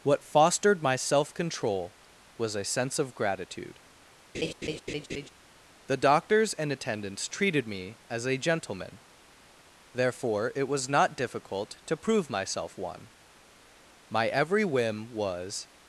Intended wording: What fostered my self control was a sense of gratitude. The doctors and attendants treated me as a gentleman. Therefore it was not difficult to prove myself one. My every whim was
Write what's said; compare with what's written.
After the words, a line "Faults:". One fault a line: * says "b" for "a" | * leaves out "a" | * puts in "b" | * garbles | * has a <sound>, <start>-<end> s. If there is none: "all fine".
What fostered my self control was a sense of gratitude. The doctors and attendants treated me as a gentleman. Therefore it was not difficult to prove myself one. My every whim was
Faults:
* has a laugh, 4.3-5.3 s